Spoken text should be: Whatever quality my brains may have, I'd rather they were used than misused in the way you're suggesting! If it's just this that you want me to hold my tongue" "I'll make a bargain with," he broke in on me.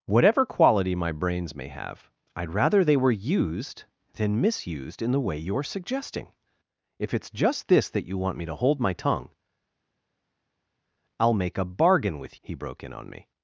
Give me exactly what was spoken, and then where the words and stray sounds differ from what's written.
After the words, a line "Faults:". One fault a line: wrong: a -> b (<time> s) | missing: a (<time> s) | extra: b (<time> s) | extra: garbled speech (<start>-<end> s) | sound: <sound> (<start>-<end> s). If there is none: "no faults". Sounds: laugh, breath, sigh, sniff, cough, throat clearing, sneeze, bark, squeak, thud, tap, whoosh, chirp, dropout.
Whatever quality my brains may have, I'd rather they were used than misused in the way you're suggesting! If it's just this that you want me to hold my tongue" "I'll make a bargain with," he broke in on me.
Faults:
no faults